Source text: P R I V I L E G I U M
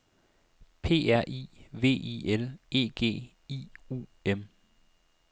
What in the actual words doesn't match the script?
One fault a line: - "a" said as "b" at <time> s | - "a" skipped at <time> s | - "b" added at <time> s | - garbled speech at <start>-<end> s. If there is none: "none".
none